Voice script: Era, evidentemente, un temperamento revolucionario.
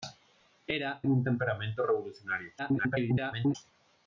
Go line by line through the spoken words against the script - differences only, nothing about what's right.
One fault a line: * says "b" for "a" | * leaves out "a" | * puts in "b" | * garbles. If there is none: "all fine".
* leaves out "evidentemente"
* garbles